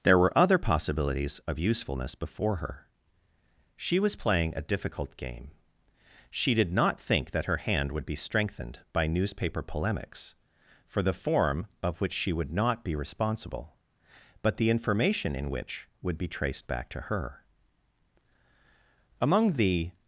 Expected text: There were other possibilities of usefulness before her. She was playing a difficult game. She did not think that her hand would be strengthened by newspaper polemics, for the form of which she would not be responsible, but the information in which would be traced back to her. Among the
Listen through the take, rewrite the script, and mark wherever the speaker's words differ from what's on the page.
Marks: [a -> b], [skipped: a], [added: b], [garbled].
There were other possibilities of usefulness before her. She was playing a difficult game. She did not think that her hand would be strengthened by newspaper polemics, for the form of which she would not be responsible, but the information in which would be traced back to her. Among the